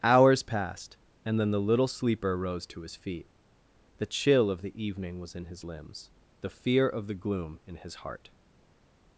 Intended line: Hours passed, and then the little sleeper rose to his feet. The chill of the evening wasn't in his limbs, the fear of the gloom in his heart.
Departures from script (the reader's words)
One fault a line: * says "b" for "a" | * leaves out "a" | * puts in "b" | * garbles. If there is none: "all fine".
* says "was" for "wasn't"